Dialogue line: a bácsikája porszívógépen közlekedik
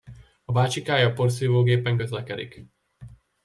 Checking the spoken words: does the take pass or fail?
pass